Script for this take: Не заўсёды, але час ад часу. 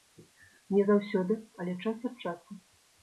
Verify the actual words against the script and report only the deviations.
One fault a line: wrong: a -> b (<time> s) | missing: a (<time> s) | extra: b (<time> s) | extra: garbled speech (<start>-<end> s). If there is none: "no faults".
no faults